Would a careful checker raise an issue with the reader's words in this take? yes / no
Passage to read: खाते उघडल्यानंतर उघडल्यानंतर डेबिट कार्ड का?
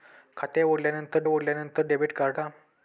no